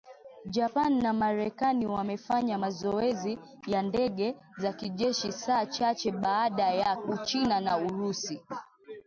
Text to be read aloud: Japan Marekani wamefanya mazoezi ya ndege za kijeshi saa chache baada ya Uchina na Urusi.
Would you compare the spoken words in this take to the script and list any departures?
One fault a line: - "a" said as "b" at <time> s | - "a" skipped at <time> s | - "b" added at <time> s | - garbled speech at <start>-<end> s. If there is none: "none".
- "na" added at 1.0 s